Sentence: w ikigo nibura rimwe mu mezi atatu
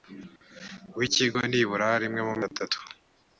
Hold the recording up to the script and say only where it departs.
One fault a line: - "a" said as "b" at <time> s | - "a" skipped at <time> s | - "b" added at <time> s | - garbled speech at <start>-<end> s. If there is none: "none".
- "mezi" skipped at 2.4 s